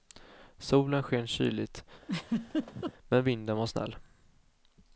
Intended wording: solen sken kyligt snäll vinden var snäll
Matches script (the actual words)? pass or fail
fail